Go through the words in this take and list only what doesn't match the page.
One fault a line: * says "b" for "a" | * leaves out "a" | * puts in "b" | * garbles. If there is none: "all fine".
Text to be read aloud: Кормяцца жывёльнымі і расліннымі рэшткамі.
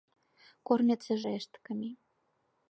* leaves out "жывёльнымі і расліннымі"